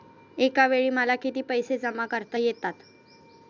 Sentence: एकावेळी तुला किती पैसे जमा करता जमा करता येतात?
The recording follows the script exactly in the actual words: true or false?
false